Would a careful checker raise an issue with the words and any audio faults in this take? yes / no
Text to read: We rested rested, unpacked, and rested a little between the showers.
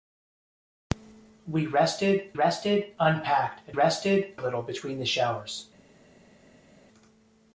no